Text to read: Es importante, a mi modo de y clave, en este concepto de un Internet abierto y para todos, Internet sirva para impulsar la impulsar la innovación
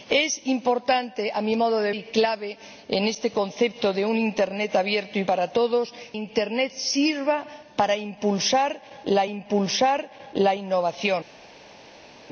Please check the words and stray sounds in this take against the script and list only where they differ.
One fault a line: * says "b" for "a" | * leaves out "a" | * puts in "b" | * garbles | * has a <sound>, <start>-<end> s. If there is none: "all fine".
all fine